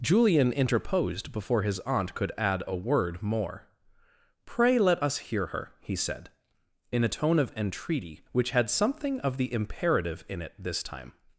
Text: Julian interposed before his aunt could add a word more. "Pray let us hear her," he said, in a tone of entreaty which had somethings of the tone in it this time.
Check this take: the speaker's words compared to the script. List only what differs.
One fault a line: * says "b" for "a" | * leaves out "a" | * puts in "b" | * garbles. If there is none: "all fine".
* says "something" for "somethings"
* says "imperative" for "tone"